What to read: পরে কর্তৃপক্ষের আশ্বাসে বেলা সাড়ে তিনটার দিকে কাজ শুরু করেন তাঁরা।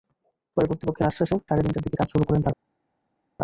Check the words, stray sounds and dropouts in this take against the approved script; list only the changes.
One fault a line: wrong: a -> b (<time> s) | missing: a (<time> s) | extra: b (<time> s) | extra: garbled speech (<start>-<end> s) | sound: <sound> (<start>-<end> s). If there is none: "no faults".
missing: বেলা (1.4 s)